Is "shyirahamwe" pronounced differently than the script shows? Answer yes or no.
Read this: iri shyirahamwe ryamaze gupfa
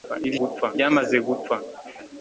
yes